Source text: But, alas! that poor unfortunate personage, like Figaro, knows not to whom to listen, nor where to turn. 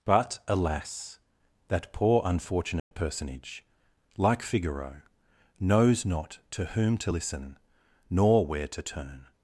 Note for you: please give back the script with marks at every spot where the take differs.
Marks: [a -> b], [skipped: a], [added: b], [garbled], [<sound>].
But, alas! that poor unfortunate [dropout] personage, like Figaro, knows not to whom to listen, nor where to turn.